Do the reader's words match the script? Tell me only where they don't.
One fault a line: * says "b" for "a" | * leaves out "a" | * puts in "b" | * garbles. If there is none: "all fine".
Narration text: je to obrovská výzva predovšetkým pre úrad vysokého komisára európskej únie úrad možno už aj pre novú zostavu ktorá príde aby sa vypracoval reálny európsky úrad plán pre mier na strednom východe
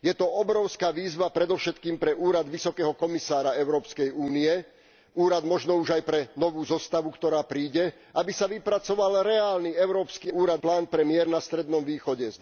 all fine